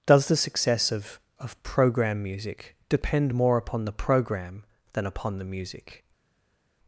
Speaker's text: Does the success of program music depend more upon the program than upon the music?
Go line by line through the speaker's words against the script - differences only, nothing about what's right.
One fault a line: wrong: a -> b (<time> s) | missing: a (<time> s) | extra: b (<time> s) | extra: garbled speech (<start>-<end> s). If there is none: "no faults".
extra: of (1.4 s)